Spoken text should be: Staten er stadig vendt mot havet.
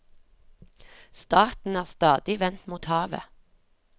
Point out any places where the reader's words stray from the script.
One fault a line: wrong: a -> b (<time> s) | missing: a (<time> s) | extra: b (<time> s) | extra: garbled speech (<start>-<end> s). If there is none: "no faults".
no faults